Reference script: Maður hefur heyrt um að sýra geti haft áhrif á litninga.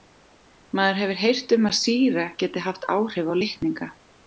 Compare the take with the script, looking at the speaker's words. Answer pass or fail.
pass